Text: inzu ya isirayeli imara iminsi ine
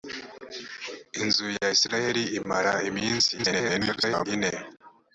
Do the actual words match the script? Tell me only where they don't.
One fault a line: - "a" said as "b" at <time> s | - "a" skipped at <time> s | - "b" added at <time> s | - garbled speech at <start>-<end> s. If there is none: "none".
- garbled speech at 3.4-4.3 s